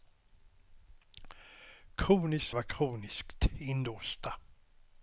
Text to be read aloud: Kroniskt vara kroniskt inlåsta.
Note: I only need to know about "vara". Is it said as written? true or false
true